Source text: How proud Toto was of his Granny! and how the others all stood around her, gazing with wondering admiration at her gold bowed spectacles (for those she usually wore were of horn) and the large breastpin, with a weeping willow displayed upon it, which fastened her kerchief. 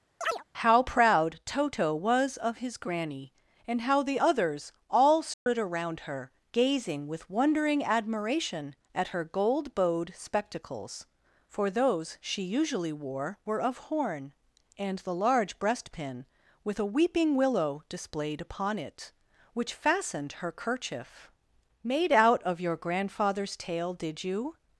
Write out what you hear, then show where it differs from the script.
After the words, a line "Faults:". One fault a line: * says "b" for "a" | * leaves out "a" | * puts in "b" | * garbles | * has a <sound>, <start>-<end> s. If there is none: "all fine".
How proud Toto was of his Granny! and how the others all stood around her, gazing with wondering admiration at her gold bowed spectacles (for those she usually wore were of horn) and the large breastpin, with a weeping willow displayed upon it, which fastened her kerchief. "Made out of your grandfather's tail, did you
Faults:
* has a chirp, 0.2-0.4 s
* has a dropout, 5.3-5.5 s
* puts in "Made out of your grandfather's tail did you"